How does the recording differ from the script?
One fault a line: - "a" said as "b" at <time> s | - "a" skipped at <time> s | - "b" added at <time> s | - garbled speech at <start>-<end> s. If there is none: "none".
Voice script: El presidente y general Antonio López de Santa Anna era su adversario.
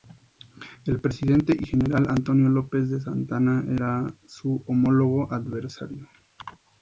- "homólogo" added at 4.6 s